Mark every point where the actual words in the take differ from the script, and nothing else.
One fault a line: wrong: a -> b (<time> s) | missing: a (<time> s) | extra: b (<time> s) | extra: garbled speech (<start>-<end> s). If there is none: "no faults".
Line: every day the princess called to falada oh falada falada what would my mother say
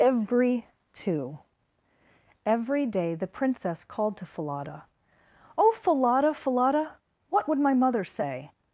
extra: two every (0.9 s)